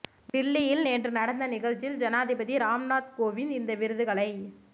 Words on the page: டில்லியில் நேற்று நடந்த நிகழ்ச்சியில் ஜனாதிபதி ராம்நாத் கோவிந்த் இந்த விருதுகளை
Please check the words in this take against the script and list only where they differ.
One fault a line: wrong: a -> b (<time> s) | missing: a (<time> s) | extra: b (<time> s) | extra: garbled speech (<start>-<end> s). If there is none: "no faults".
no faults